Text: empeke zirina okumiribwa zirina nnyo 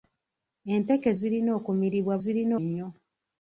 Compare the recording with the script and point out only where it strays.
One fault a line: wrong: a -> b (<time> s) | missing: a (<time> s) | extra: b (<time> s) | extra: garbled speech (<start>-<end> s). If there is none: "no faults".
no faults